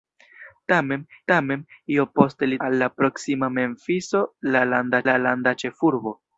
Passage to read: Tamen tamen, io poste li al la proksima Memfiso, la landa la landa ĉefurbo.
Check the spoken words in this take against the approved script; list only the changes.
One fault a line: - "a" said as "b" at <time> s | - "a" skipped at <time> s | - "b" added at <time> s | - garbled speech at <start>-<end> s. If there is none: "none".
none